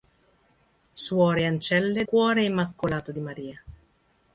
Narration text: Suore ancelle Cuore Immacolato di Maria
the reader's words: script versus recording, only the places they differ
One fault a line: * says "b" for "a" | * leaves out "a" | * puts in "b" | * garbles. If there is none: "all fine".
all fine